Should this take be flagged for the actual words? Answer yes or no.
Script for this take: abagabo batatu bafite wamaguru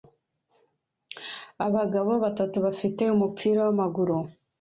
yes